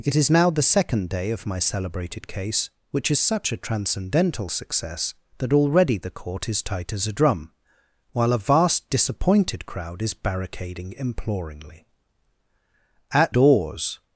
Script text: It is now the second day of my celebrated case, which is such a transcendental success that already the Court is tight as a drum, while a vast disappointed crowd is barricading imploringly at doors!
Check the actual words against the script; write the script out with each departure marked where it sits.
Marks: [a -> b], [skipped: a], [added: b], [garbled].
It is now the second day of my celebrated case, which is such a transcendental success that already the Court is tight as a drum, while a vast disappointed crowd is barricading imploringly at doors!